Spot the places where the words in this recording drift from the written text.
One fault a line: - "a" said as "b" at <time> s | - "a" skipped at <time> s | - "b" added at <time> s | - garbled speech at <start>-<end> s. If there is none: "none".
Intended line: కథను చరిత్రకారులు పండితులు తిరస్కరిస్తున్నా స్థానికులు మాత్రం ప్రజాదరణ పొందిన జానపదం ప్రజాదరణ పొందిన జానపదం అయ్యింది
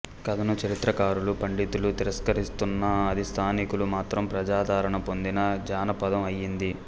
- "అది" added at 3.1 s
- "ప్రజాదరణ పొందిన జానపదం" skipped at 6.2 s